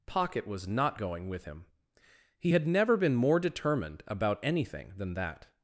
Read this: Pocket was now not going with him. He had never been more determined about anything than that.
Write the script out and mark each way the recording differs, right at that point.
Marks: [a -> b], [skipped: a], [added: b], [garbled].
Pocket was [skipped: now] not going with him. He had never been more determined about anything than that.